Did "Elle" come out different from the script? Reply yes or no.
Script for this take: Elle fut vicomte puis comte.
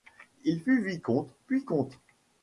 yes